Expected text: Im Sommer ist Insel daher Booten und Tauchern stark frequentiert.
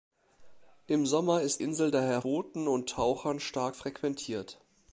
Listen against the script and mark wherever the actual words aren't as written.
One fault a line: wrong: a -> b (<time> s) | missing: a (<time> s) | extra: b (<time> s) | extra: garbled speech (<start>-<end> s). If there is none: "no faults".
no faults